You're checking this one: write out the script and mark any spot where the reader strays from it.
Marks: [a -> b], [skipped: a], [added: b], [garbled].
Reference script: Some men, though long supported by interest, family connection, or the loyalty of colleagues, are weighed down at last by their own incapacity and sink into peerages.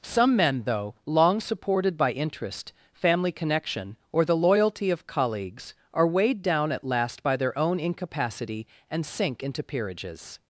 Some men, though long supported by interest, family connection, or the loyalty of colleagues, are weighed down at last by their own incapacity and sink into peerages.